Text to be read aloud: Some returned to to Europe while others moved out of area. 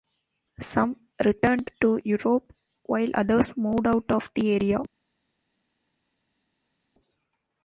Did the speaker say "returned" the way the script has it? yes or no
yes